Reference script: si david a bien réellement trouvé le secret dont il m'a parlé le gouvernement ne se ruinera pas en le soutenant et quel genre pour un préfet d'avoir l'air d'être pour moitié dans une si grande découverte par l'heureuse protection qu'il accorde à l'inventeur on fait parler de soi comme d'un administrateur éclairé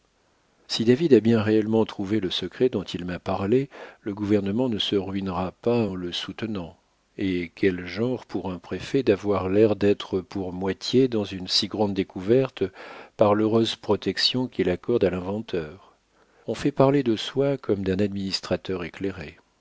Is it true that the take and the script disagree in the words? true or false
false